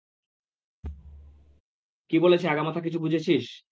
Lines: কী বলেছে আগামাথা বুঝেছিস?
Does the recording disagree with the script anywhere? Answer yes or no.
yes